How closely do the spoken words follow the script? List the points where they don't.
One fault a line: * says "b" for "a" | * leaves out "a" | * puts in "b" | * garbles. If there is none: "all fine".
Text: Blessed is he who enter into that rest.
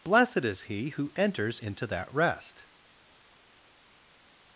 * says "enters" for "enter"